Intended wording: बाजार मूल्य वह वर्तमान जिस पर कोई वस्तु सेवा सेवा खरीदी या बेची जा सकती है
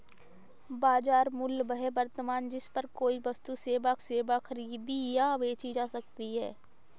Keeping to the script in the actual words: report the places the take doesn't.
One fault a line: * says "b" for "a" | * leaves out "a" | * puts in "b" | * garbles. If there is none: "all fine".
all fine